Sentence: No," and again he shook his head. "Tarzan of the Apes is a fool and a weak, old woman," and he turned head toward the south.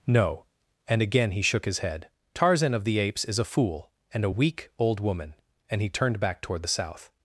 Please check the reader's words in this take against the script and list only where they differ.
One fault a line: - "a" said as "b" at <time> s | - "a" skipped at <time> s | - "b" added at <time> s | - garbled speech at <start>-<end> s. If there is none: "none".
- "head" said as "back" at 6.2 s